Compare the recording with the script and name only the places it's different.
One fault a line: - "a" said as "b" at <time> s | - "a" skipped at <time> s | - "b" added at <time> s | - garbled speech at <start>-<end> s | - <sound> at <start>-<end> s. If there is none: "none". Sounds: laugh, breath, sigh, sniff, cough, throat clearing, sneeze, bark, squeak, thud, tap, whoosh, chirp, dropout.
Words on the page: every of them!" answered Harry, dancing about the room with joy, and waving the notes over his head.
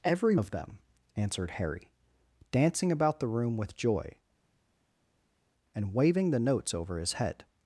none